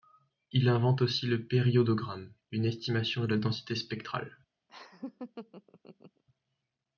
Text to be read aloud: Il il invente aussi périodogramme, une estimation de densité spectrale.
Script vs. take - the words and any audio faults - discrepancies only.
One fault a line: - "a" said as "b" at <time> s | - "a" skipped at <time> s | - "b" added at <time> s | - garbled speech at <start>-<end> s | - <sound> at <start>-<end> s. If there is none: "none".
- "il" skipped at 0.7 s
- "le" added at 1.3 s
- "la" added at 3.3 s
- laugh at 4.7-6.2 s